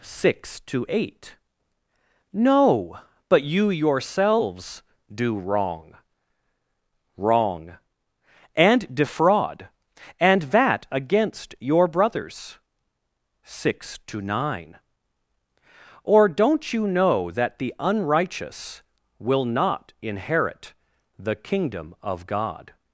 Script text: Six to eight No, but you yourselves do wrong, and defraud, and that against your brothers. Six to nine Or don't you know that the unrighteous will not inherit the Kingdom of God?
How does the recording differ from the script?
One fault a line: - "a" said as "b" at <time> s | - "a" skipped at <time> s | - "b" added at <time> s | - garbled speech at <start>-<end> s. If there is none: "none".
- "wrong" added at 7.2 s